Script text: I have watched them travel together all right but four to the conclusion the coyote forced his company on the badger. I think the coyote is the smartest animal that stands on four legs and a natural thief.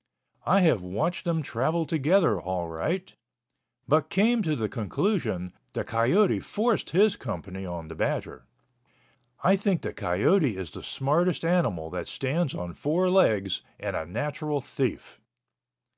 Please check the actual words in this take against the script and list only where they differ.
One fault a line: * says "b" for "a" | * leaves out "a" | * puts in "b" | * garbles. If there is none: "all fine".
* says "came" for "four"